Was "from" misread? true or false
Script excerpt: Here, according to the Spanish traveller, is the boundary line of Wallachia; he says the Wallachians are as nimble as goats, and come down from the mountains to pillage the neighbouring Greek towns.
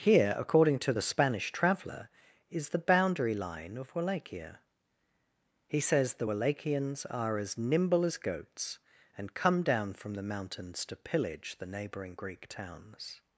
false